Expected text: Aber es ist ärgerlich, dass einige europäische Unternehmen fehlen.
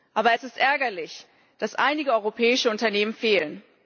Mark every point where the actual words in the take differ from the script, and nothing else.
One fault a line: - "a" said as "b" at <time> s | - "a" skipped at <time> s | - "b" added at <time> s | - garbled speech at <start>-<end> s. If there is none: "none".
none